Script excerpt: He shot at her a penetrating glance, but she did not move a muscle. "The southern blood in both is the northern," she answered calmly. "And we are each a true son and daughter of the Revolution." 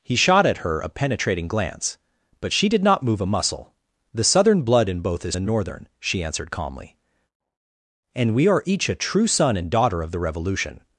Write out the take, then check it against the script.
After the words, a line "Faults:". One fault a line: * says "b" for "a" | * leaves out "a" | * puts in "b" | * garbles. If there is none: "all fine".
He shot at her a penetrating glance, but she did not move a muscle. "The southern blood in both is the northern," she answered calmly. "And we are each a true son and daughter of the Revolution."
Faults:
all fine